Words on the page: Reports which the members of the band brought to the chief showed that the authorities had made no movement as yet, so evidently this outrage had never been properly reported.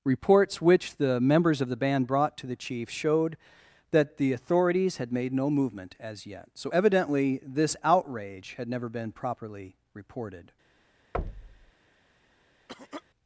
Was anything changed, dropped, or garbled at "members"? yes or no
no